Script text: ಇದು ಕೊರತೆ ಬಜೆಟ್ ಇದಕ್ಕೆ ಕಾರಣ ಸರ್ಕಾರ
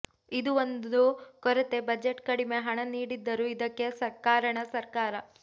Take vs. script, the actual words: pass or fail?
fail